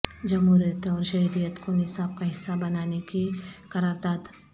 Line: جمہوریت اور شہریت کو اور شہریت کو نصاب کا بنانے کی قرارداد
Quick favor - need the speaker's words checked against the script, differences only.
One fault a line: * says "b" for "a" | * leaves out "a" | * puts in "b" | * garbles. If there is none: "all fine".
* leaves out "اور شہریت کو"
* puts in "حصہ"